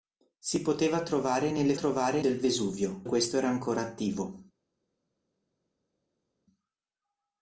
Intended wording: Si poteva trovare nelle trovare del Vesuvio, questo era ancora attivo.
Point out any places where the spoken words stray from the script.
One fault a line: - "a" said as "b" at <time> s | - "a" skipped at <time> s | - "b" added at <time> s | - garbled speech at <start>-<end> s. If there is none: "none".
none